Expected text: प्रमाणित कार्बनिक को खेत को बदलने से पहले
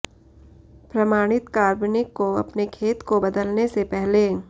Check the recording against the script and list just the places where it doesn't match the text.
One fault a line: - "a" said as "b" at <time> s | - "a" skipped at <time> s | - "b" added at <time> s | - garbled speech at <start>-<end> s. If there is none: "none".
- "अपने" added at 2.4 s